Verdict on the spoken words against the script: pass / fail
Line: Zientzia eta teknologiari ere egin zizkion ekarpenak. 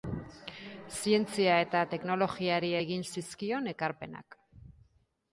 fail